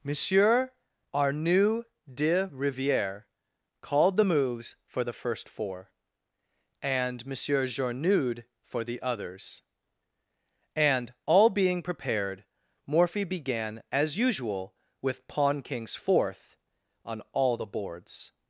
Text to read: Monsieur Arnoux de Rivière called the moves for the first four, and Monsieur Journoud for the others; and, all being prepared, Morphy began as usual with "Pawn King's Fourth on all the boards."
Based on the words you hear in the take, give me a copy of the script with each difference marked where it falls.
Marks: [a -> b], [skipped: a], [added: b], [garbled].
Monsieur Arnoux de Rivière called the moves for the first four, and Monsieur Journoud for the others; and, all being prepared, Morphy began as usual with "Pawn King's Fourth on all the boards."